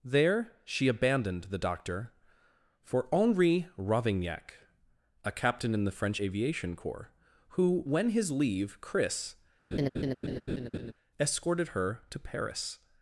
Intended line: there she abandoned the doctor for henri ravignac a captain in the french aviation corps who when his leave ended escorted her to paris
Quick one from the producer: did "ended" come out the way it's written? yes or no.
no